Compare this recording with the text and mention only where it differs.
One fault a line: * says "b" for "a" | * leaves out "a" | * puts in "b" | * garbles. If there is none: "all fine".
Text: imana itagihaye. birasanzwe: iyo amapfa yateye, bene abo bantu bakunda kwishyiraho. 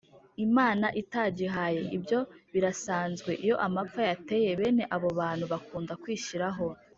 * puts in "ibyo"